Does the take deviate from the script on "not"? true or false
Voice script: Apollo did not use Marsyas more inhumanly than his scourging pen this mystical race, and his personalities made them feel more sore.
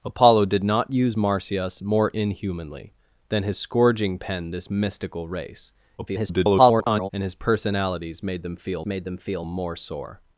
false